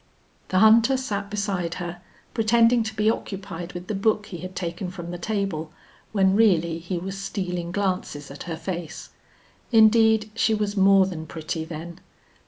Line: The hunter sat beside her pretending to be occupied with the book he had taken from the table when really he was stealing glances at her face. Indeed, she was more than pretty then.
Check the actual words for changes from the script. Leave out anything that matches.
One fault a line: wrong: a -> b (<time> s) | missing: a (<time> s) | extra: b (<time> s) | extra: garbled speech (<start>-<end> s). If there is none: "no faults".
no faults